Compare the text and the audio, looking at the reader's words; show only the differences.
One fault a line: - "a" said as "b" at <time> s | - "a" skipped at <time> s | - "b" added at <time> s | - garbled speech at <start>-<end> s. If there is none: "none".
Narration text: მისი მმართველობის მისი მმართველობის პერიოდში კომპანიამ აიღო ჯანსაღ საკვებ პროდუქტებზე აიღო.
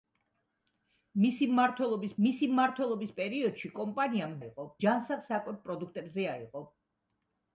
none